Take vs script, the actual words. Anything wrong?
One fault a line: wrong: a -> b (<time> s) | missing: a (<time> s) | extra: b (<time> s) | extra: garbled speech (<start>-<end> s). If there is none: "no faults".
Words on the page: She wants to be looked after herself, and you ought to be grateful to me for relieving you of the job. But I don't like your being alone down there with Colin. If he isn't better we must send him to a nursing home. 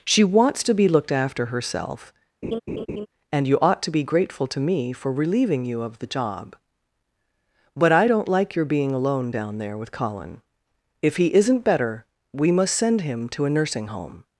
no faults